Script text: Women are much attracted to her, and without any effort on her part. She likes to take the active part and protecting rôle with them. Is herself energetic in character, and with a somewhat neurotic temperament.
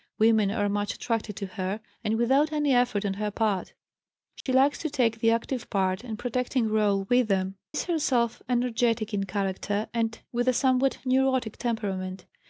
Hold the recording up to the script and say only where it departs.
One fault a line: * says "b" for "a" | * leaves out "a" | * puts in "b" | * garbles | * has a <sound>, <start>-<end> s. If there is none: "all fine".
* has a dropout, 4.4-4.5 s